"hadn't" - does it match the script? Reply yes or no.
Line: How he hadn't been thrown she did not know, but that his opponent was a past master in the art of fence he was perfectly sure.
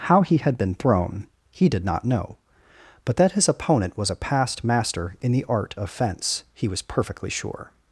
no